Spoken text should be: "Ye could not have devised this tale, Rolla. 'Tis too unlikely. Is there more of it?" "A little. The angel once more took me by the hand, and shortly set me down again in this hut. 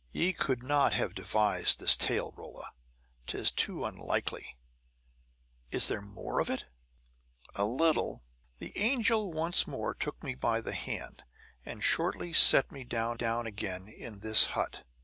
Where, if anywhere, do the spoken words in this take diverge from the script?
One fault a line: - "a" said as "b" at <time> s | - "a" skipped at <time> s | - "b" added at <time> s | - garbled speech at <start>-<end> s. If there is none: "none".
- "down" added at 13.1 s